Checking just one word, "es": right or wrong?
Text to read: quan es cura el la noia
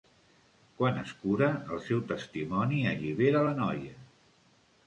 right